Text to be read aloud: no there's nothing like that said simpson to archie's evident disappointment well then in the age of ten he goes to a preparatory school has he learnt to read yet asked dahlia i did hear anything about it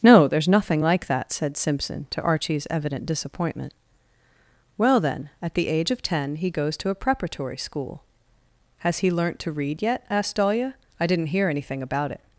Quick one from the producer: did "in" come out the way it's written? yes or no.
no